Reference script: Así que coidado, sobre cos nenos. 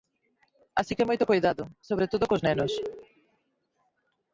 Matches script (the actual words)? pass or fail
fail